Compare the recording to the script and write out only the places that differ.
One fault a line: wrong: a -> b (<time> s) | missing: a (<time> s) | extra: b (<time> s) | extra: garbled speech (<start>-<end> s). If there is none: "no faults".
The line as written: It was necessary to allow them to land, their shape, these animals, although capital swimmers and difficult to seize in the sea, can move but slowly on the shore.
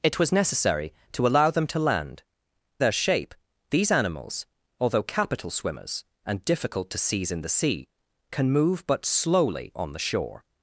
no faults